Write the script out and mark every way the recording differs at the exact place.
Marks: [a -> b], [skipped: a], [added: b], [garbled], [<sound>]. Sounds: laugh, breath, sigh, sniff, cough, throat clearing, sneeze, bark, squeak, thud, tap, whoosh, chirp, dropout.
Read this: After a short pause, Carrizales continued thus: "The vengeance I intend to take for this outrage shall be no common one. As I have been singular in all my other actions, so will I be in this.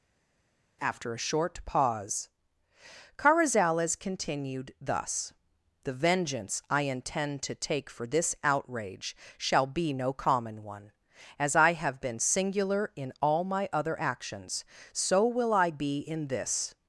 After a short pause, Carrizales continued thus: "The vengeance I intend to take for this outrage shall be no common one. As I have been singular in all my other actions, so will I be in this.